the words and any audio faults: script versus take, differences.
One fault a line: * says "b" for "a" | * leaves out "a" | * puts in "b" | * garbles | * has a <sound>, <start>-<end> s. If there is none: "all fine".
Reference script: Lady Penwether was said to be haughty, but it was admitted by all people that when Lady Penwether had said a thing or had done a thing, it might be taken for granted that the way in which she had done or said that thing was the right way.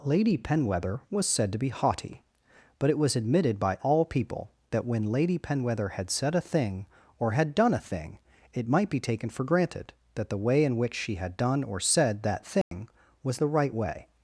* has a dropout, 12.6-12.7 s